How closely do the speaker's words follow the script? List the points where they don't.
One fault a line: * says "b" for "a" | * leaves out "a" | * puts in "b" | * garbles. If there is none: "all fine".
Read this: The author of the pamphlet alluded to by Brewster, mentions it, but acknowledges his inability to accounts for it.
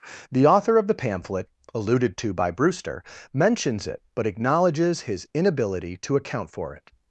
* says "account" for "accounts"